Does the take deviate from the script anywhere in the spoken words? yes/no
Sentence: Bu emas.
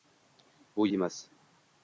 no